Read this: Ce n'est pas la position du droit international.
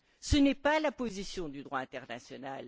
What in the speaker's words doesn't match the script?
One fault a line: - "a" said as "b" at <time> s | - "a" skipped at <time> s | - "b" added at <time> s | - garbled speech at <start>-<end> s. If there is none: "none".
none